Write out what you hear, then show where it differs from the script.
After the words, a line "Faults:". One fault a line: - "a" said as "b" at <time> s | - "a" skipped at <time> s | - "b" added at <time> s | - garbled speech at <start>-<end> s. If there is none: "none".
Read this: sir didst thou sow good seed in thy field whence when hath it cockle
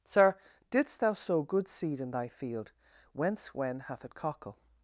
sir didst thou sow good seed in thy field whence when hath it cockle
Faults:
none